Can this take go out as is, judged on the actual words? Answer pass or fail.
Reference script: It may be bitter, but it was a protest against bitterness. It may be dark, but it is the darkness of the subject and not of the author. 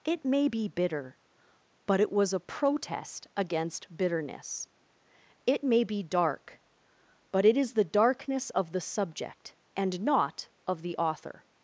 pass